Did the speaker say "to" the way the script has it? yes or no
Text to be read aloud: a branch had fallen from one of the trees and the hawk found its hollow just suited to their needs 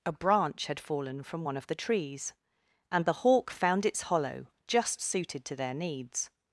yes